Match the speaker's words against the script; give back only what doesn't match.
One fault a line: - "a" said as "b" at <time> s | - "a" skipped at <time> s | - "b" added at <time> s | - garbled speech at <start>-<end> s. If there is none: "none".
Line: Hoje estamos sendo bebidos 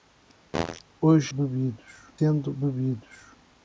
- "estamos" said as "bebidos" at 1.3 s